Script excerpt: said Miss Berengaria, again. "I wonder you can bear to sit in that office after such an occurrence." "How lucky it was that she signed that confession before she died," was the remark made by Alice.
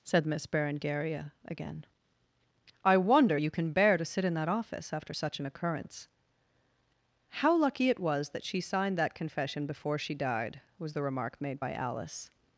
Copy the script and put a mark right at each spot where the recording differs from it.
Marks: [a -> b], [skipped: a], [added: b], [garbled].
said Miss Berengaria, again. "I wonder you can bear to sit in that office after such an occurrence." "How lucky it was that she signed that confession before she died," was the remark made by Alice.